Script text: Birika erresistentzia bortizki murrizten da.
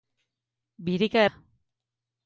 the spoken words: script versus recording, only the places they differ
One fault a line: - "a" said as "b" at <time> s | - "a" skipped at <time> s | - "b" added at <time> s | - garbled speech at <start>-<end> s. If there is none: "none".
- "erresistentzia bortizki murrizten" skipped at 1.2 s